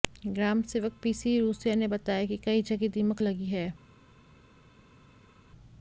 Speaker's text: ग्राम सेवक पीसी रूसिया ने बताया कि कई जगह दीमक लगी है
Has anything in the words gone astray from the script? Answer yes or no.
no